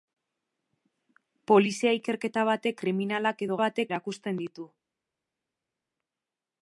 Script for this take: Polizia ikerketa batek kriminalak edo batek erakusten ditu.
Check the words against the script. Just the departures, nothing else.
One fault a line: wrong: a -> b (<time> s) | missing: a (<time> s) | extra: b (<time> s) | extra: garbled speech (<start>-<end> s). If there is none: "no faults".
no faults